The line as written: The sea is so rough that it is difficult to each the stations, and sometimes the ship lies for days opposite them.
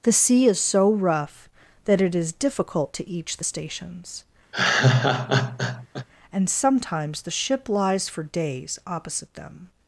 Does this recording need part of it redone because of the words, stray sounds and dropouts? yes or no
yes